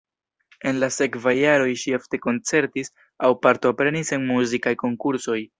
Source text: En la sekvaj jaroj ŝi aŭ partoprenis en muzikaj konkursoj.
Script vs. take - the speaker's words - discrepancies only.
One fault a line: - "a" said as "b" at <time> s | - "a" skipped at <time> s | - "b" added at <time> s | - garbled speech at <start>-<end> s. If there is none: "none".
- "ofte koncertis" added at 2.0 s